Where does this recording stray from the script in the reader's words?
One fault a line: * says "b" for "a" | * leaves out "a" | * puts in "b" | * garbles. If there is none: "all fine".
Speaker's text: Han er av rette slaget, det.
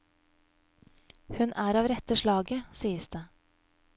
* says "Hun" for "Han"
* puts in "sies"